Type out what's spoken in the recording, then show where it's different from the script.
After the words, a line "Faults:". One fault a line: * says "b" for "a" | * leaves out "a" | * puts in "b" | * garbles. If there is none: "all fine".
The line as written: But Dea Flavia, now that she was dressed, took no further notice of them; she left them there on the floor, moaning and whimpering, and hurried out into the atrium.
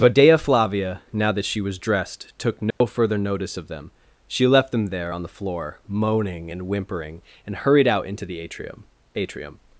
But Dea Flavia, now that she was dressed, took no further notice of them; she left them there on the floor, moaning and whimpering, and hurried out into the atrium atrium.
Faults:
* puts in "atrium"